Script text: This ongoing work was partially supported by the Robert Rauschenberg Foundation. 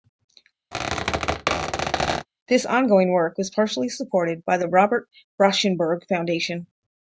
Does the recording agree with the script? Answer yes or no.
yes